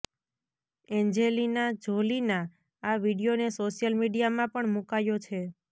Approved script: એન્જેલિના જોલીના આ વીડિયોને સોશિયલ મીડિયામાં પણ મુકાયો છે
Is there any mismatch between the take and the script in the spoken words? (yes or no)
no